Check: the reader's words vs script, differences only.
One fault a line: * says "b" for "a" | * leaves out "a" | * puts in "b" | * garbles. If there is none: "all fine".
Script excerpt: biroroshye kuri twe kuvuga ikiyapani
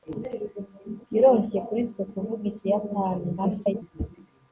* garbles